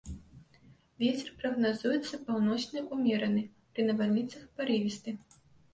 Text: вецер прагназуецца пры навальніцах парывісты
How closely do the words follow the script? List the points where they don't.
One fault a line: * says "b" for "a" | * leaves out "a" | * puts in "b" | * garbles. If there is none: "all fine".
* puts in "паўночны ўмераны"